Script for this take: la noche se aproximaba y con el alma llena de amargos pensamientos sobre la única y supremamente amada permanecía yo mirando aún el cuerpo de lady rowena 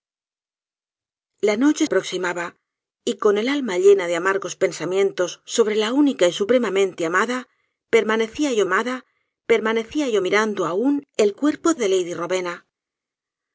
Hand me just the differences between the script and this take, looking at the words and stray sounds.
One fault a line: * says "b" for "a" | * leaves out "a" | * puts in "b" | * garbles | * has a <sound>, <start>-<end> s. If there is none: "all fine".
* leaves out "se"
* puts in "amada permanecía yo"